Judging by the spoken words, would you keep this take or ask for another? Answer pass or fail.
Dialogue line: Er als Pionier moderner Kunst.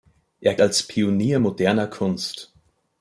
pass